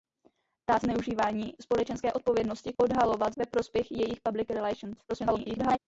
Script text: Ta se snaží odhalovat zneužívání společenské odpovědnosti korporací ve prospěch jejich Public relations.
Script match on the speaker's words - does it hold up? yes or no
no